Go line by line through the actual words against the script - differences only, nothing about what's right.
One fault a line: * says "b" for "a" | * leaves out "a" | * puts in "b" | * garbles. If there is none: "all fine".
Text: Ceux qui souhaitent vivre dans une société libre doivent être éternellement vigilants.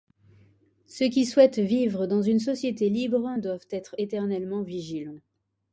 all fine